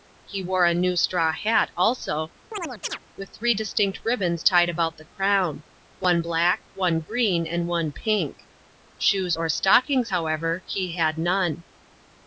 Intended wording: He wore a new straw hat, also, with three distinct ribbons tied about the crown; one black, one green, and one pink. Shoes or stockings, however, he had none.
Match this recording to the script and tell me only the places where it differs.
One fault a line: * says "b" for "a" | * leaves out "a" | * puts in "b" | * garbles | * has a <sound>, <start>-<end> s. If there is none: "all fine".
* has a chirp, 2.5-3.0 s